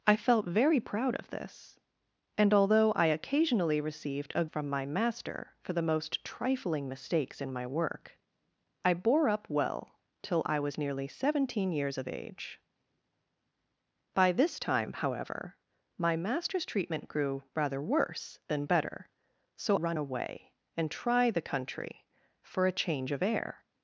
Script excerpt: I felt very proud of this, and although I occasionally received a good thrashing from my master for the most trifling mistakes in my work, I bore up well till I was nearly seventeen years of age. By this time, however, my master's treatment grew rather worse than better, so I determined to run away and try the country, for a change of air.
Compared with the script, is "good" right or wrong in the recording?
wrong